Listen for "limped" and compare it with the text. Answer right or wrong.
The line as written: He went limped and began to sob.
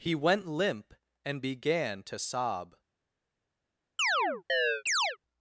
wrong